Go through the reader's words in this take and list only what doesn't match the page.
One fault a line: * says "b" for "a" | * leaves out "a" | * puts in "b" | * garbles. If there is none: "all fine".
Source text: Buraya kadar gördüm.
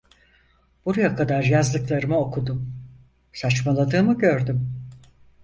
* puts in "yazdıklarımı okudum saçmaladığımı"